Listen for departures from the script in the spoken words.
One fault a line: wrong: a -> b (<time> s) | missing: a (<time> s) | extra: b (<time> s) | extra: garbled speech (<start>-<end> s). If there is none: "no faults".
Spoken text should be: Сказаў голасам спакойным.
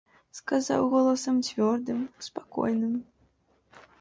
extra: цвёрдым (1.5 s)